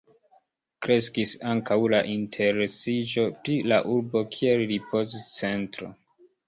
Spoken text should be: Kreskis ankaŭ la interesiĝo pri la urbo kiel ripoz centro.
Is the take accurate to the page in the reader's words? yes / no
yes